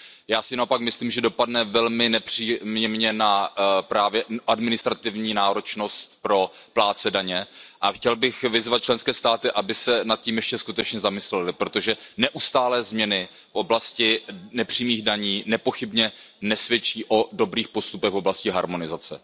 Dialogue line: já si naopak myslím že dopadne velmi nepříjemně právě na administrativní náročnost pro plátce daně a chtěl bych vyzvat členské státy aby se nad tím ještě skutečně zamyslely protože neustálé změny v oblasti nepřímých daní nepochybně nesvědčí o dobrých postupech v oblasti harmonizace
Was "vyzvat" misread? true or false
false